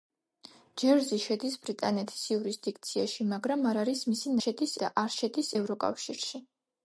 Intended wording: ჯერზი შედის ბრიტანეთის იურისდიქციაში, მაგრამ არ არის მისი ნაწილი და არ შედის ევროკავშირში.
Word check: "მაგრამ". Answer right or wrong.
right